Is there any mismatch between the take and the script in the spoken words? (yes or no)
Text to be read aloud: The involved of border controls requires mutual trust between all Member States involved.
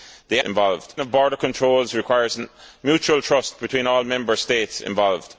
no